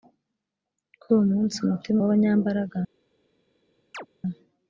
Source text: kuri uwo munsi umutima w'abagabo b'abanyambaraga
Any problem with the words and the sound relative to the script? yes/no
yes